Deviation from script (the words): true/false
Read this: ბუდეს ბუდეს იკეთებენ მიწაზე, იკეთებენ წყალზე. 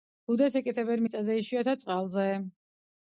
true